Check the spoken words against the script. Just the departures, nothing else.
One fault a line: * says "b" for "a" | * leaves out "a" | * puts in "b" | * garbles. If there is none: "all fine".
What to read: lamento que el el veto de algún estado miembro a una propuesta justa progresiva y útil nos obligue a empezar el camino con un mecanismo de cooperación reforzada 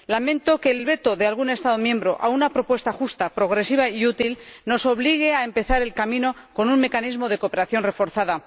all fine